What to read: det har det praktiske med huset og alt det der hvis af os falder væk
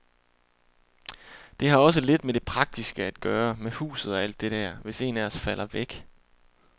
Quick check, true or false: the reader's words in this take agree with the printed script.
false